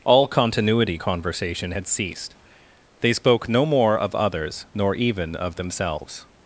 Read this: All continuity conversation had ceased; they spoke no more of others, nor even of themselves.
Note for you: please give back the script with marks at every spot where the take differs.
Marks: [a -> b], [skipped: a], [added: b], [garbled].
All continuity conversation had ceased; they spoke no more of others, nor even of themselves.